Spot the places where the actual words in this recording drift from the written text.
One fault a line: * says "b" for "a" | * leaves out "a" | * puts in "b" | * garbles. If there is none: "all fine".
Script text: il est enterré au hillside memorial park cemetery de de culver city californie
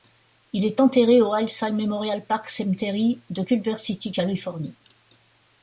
* leaves out "de"